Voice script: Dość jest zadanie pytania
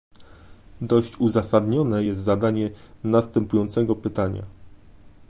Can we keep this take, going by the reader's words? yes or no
no